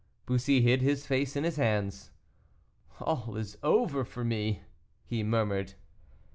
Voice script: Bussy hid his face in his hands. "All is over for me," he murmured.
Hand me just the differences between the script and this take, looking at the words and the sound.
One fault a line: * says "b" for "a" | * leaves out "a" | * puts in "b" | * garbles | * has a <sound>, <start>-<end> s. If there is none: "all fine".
all fine